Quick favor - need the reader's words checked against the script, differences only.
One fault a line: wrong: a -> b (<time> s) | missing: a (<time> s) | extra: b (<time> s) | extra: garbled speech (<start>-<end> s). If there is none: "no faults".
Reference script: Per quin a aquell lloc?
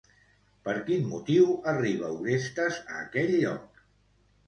extra: motiu arriba Orestes (1.1 s)